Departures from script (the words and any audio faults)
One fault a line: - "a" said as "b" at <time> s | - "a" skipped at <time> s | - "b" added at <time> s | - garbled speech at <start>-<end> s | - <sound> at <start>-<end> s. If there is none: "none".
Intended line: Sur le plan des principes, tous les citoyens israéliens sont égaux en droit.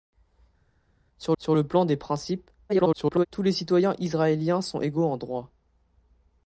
- "sur" added at 1.4 s
- garbled speech at 2.7-3.3 s